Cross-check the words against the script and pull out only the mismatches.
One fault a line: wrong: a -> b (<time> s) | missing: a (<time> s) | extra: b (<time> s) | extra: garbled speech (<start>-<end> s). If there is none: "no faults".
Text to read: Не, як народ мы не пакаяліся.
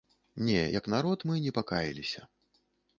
no faults